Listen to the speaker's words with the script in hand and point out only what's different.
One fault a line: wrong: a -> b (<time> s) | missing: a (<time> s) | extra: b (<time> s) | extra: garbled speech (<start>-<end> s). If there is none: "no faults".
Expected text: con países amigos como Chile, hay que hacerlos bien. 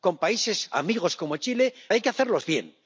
no faults